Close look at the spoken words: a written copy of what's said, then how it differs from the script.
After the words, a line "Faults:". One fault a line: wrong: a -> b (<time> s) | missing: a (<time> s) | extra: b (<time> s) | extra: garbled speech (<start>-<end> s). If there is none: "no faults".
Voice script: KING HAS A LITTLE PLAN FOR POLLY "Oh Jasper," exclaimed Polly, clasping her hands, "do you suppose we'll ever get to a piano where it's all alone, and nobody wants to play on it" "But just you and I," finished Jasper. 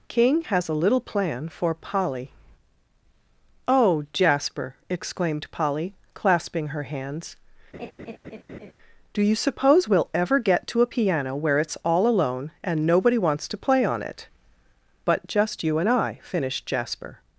KING HAS A LITTLE PLAN FOR POLLY "Oh Jasper," exclaimed Polly, clasping her hands, "do you suppose we'll ever get to a piano where it's all alone, and nobody wants to play on it" "But just you and I," finished Jasper.
Faults:
no faults